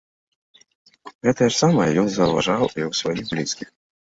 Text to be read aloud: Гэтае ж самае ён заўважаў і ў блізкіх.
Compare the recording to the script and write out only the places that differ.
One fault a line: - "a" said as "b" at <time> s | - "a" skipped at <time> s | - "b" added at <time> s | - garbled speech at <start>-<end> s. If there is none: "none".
- "сваіх" added at 3.0 s